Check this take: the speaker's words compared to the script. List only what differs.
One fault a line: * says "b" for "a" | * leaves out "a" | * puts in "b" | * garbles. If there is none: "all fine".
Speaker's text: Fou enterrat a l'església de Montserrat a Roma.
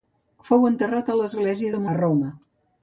* leaves out "Montserrat"